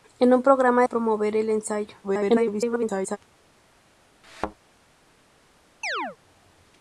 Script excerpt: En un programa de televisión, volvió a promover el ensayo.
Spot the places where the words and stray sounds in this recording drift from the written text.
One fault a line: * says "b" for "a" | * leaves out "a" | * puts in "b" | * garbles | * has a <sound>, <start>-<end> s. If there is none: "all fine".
* leaves out "de televisión volvió"
* garbles
* has a thud, 4.2-4.6 s
* has a chirp, 5.8-6.2 s